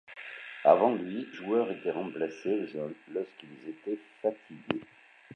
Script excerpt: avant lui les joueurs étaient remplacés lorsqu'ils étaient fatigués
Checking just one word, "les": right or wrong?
wrong